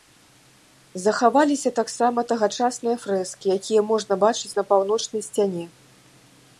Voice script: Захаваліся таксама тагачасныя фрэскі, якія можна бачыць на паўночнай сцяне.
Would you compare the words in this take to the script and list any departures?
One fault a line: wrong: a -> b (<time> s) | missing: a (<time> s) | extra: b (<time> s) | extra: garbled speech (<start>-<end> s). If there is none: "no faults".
no faults